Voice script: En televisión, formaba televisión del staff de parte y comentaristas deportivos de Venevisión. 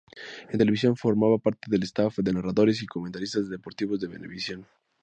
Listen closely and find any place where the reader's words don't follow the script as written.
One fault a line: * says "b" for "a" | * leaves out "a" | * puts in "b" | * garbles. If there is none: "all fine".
* says "parte" for "televisión"
* says "narradores" for "parte"